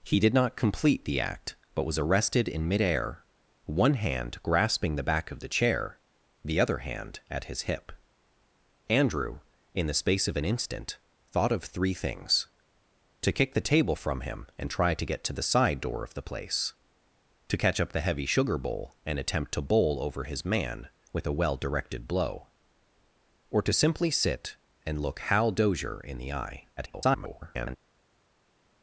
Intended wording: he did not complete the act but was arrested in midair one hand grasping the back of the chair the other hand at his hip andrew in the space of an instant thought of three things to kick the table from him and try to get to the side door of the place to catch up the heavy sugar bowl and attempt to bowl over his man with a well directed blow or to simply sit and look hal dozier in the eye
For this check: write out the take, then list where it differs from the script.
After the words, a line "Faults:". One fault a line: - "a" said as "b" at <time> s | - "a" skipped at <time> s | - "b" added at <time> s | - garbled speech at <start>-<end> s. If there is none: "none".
he did not complete the act but was arrested in midair one hand grasping the back of the chair the other hand at his hip andrew in the space of an instant thought of three things to kick the table from him and try to get to the side door of the place to catch up the heavy sugar bowl and attempt to bowl over his man with a well directed blow or to simply sit and look hal dozier in the eye [garbled]
Faults:
- garbled speech at 26.8-27.8 s